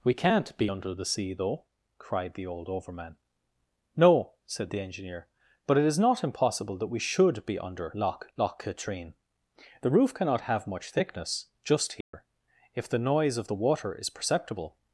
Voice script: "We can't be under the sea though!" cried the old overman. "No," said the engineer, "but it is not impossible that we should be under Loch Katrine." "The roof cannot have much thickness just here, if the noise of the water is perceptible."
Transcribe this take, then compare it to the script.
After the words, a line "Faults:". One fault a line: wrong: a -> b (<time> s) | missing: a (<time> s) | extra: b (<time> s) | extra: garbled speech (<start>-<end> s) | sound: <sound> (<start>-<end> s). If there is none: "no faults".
"We can't be under the sea though!" cried the old overman. "No," said the engineer, "but it is not impossible that we should be under Loch Loch Katrine." "The roof cannot have much thickness just here, if the noise of the water is perceptible."
Faults:
extra: Loch (8.4 s)
sound: dropout (12.0-12.1 s)